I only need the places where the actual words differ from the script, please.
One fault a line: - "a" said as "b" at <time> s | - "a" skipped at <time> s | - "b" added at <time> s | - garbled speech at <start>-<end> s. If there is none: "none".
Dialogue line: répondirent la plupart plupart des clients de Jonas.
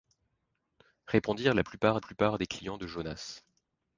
none